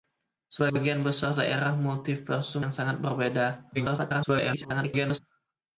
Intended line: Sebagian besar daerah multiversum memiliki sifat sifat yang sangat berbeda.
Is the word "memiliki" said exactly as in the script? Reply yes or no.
no